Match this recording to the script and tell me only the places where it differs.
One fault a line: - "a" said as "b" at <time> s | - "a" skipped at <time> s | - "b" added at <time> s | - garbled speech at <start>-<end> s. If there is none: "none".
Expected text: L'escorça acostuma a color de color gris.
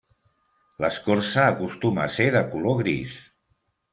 - "color" said as "ser" at 2.1 s